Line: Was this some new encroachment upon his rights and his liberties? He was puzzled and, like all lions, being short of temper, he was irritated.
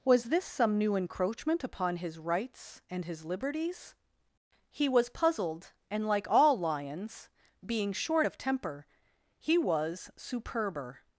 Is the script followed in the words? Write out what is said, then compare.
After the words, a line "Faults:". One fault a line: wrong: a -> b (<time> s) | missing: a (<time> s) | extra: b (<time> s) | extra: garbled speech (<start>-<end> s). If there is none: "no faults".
Was this some new encroachment upon his rights and his liberties? He was puzzled and, like all lions, being short of temper, he was superber.
Faults:
wrong: irritated -> superber (10.2 s)